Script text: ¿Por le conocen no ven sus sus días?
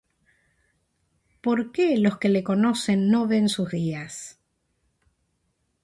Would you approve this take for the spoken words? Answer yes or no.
no